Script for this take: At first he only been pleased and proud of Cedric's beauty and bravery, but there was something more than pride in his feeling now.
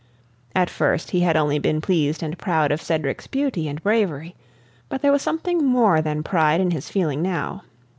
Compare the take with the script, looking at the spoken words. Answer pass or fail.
fail